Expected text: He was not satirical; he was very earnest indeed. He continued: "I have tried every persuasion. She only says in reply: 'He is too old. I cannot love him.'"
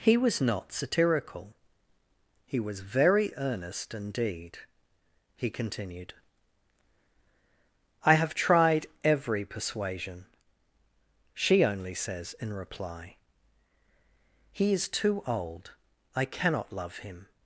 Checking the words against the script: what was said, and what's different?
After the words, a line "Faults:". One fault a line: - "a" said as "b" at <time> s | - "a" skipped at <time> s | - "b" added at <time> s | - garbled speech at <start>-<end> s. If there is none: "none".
He was not satirical; he was very earnest indeed. He continued: "I have tried every persuasion. She only says in reply: 'He is too old. I cannot love him.'"
Faults:
none